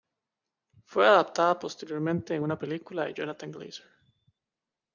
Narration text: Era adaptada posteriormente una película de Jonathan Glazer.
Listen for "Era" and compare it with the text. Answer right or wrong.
wrong